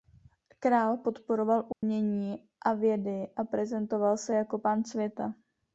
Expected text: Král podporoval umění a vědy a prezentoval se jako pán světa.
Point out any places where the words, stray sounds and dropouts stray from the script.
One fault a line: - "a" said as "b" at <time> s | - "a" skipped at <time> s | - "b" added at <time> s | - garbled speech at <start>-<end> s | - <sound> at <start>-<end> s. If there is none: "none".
- dropout at 1.7-1.8 s